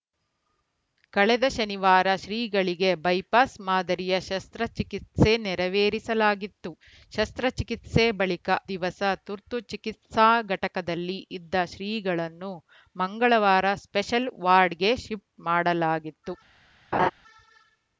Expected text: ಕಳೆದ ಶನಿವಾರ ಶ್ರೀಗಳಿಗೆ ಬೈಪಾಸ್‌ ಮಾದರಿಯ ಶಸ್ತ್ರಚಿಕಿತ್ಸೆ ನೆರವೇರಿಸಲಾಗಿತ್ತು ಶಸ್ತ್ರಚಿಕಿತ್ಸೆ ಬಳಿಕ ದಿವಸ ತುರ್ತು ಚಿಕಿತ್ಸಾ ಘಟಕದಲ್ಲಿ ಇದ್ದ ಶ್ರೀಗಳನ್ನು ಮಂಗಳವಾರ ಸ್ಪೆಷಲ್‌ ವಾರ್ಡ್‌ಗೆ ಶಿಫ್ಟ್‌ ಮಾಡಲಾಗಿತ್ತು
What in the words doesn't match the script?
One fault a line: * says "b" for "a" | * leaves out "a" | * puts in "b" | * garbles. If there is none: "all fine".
all fine